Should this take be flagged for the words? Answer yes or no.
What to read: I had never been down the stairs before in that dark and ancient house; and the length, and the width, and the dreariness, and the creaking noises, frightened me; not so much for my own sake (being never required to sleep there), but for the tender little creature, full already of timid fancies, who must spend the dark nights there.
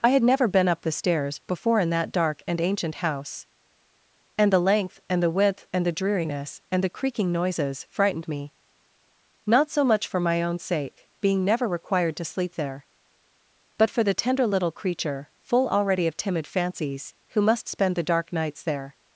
yes